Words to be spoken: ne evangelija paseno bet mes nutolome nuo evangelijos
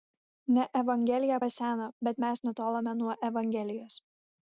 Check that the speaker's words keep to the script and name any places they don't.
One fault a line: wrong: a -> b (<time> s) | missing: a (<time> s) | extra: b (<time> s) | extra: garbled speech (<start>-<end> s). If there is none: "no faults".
no faults